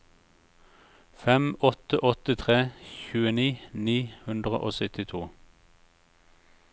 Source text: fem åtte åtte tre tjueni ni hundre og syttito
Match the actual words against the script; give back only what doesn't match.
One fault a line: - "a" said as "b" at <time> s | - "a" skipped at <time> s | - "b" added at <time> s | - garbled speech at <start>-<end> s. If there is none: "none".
none